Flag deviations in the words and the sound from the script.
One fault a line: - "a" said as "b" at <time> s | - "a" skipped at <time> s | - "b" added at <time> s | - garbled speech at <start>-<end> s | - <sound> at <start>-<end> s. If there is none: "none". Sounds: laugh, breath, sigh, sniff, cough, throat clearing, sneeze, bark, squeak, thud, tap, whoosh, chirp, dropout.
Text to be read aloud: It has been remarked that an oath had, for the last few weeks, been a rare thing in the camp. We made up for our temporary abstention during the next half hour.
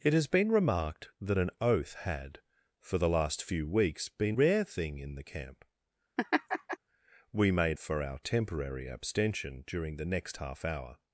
- "a" skipped at 4.3 s
- laugh at 6.2-6.8 s
- "up" skipped at 7.8 s